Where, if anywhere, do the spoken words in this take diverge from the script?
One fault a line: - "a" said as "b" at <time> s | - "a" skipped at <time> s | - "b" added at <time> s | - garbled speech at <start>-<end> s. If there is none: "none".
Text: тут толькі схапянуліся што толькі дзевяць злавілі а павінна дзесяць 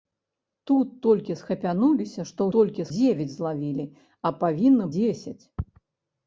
none